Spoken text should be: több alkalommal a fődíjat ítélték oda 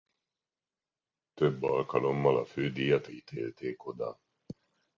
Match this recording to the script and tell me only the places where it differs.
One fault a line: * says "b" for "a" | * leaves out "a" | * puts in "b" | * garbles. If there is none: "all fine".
all fine